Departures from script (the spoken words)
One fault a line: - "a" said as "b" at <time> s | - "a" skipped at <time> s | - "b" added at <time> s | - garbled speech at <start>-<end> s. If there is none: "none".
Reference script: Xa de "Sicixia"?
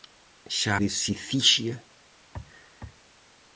none